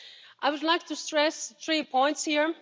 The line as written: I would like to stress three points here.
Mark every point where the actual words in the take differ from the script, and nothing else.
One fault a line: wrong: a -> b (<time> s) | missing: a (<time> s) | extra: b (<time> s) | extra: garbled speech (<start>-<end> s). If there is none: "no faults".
no faults